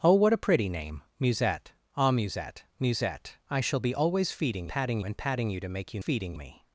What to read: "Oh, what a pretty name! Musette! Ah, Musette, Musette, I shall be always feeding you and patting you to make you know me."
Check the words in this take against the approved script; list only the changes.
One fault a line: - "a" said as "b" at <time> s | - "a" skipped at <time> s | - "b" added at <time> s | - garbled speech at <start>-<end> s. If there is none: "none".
- "you" said as "patting" at 4.7 s
- "know" said as "feeding" at 6.0 s